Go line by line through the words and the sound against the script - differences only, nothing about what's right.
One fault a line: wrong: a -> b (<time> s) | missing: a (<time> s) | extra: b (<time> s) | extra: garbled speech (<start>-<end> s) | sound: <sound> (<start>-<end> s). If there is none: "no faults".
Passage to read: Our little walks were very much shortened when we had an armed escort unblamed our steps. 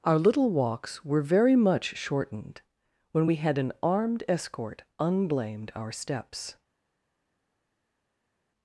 no faults